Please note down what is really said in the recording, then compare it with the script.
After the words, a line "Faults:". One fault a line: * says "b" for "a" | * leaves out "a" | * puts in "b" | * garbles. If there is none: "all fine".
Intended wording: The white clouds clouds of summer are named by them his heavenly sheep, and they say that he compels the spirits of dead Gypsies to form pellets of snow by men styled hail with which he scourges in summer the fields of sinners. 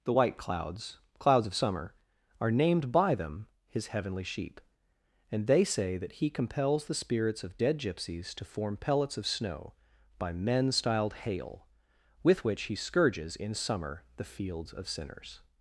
The white clouds clouds of summer are named by them his heavenly sheep, and they say that he compels the spirits of dead Gypsies to form pellets of snow by men styled hail with which he scourges in summer the fields of sinners.
Faults:
all fine